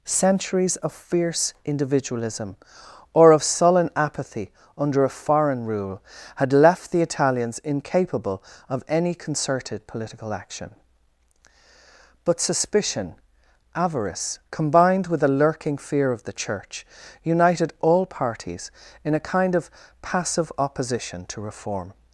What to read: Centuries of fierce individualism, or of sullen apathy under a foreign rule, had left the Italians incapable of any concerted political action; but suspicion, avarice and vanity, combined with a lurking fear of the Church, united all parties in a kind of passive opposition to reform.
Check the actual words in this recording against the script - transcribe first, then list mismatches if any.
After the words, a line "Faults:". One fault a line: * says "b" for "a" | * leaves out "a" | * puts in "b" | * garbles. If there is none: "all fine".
Centuries of fierce individualism, or of sullen apathy under a foreign rule, had left the Italians incapable of any concerted political action; but suspicion, avarice combined with a lurking fear of the Church, united all parties in a kind of passive opposition to reform.
Faults:
* leaves out "and vanity"